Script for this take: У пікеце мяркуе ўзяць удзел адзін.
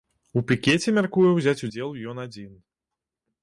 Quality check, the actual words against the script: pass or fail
fail